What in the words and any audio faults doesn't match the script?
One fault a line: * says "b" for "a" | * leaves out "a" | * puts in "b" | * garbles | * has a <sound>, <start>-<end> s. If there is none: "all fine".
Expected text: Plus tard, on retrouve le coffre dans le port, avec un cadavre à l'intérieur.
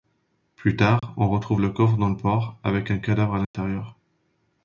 * has a dropout, 1.0-1.0 s
* has a dropout, 3.4-3.5 s